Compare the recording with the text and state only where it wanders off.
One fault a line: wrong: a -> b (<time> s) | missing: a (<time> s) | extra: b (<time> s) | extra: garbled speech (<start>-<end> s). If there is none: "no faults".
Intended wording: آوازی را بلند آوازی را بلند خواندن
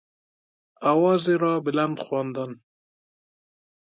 missing: آوازی را بلند (2.0 s)